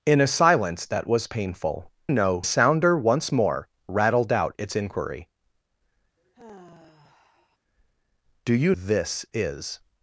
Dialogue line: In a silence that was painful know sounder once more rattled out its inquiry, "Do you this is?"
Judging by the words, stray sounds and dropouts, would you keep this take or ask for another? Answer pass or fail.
fail